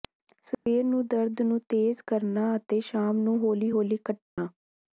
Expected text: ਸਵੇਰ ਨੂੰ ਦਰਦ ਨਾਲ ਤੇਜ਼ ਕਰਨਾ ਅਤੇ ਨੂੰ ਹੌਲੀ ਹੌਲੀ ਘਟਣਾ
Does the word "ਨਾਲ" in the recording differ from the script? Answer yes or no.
yes